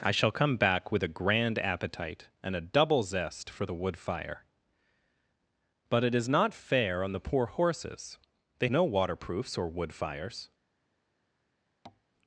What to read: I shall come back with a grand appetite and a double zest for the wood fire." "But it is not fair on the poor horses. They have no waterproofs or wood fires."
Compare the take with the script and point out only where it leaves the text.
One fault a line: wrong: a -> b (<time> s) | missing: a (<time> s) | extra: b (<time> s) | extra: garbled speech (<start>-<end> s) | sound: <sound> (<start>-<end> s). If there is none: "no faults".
missing: have (8.7 s)
sound: tap (11.8-12.0 s)